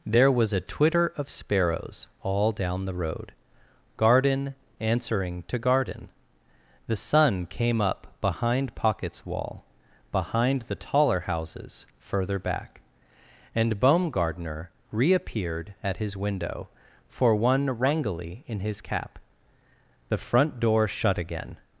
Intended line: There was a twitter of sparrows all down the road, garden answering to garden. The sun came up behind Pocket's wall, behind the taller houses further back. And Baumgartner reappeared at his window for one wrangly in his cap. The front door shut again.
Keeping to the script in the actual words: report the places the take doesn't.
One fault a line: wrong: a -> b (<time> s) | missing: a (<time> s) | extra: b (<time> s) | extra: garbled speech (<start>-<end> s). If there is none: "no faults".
no faults